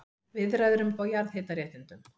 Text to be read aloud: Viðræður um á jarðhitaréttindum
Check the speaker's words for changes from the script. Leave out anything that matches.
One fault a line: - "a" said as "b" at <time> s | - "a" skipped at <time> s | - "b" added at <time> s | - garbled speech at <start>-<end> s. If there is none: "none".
none